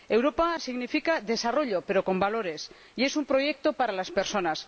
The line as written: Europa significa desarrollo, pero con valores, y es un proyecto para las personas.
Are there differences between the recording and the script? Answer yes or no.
no